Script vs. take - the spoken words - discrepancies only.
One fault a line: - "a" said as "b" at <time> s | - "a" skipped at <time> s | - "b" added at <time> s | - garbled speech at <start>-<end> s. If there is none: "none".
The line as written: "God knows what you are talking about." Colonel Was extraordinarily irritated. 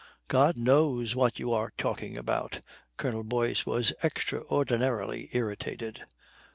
- "Boyce" added at 3.2 s